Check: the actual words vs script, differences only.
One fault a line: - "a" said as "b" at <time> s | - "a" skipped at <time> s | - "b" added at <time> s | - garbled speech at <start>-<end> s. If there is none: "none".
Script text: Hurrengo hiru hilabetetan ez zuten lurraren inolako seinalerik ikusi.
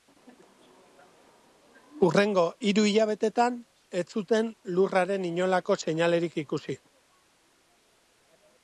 none